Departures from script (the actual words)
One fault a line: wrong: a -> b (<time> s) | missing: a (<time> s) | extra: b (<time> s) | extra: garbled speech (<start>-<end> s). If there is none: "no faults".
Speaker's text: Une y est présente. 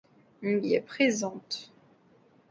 no faults